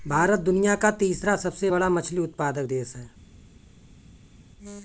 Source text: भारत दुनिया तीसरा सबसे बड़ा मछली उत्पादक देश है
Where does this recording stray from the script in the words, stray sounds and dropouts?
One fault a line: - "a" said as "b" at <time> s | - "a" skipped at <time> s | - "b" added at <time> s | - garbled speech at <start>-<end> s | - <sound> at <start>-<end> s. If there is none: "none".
- "का" added at 0.8 s